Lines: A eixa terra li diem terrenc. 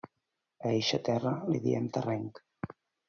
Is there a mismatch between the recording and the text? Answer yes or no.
no